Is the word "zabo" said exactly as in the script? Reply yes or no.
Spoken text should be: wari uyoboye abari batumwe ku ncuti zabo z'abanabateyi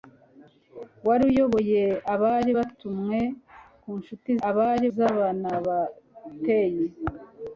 no